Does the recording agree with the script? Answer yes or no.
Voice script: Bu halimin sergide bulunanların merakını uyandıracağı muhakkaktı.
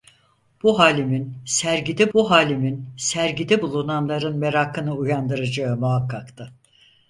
no